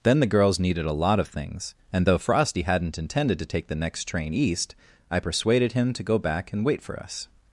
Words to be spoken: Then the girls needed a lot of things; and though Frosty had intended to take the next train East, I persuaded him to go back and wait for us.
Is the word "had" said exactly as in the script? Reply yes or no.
no